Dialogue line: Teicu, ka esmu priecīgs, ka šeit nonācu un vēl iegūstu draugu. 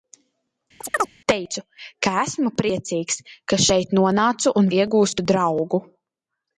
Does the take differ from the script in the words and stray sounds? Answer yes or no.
yes